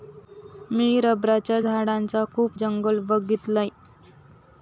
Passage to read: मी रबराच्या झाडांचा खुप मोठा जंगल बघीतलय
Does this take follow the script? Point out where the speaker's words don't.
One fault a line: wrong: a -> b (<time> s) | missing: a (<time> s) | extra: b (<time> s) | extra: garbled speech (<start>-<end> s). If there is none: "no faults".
missing: मोठा (2.6 s)